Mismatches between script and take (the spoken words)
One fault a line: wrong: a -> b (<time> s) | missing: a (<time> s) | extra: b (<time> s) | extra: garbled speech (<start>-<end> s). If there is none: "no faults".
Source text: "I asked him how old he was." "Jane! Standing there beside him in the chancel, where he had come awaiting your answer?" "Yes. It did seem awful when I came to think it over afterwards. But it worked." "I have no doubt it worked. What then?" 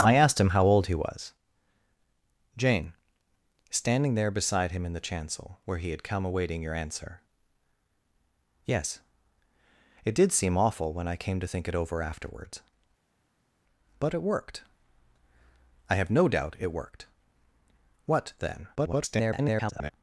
extra: garbled speech (18.7-19.9 s)